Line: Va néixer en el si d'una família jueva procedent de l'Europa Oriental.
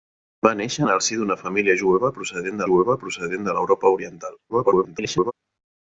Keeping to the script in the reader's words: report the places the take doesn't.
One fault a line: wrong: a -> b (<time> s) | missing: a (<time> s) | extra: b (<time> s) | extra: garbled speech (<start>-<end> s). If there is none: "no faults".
extra: jueva procedent (2.7 s)
extra: garbled speech (4.5-5.3 s)